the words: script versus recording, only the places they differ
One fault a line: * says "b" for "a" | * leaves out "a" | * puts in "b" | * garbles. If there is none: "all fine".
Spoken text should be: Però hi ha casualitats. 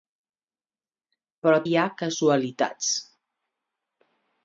all fine